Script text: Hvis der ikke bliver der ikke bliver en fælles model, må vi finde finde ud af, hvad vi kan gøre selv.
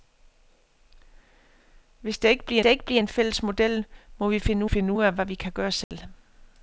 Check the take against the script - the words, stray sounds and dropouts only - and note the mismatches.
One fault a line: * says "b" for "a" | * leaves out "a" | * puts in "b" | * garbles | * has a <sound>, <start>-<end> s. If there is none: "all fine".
* has a dropout, 5.8-5.9 s